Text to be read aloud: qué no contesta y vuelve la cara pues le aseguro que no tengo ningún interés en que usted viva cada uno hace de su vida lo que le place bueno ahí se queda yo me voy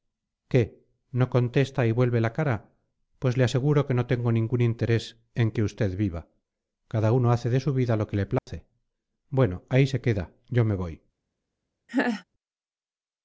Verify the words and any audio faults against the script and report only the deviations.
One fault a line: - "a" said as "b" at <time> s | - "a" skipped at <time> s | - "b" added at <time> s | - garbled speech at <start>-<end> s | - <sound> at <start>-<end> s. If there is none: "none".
- dropout at 8.4-8.5 s
- laugh at 11.9-12.2 s